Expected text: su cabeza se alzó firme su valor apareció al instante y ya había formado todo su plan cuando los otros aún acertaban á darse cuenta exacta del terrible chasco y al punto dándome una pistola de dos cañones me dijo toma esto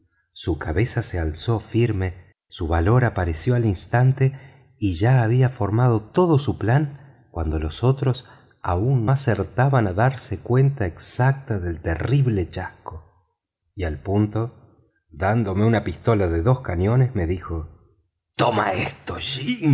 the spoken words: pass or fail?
pass